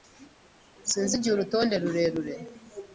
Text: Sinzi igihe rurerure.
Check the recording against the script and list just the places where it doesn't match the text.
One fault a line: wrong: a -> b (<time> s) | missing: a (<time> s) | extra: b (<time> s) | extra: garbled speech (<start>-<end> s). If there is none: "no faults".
extra: urutonde (1.3 s)